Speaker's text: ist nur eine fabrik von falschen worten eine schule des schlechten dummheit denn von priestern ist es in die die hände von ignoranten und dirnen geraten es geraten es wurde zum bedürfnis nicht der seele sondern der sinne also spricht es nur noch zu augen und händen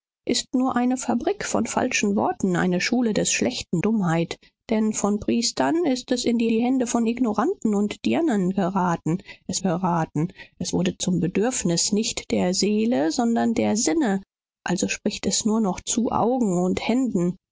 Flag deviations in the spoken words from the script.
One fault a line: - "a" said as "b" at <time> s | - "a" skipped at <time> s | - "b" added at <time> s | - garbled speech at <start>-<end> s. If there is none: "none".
none